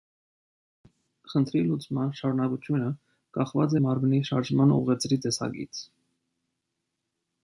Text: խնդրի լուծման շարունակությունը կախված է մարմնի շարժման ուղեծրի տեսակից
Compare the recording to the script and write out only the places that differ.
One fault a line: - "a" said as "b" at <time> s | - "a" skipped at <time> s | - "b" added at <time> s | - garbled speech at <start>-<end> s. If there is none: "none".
none